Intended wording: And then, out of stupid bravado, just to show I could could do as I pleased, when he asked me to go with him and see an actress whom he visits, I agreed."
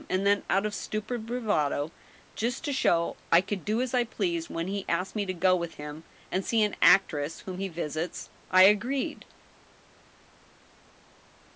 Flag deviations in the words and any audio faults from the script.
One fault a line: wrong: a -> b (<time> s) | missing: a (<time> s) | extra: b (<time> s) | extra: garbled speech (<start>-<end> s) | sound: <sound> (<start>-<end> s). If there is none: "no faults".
missing: could (3.6 s)